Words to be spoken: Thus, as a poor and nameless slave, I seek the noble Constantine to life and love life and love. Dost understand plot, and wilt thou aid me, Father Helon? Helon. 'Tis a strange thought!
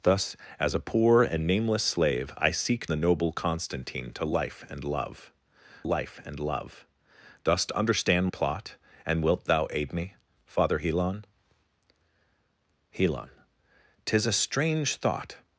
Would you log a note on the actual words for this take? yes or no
no